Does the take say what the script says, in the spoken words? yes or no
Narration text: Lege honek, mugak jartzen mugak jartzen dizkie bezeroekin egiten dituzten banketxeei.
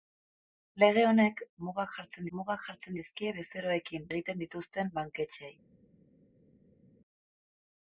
yes